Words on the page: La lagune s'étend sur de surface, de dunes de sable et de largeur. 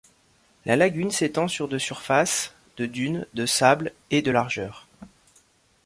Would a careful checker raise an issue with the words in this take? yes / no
no